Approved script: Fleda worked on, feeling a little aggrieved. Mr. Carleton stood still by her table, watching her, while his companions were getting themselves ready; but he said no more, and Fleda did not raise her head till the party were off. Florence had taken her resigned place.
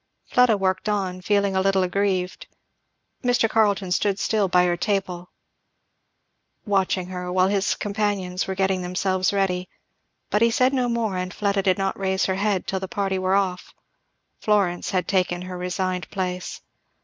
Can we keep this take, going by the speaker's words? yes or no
yes